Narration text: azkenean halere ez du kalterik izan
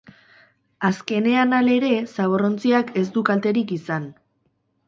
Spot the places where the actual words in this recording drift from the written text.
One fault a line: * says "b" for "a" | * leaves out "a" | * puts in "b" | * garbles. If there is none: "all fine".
* puts in "zaborrontziak"